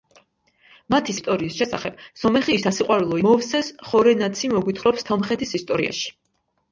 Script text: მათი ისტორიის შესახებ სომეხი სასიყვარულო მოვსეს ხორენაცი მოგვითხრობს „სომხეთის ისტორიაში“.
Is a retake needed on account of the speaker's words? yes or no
no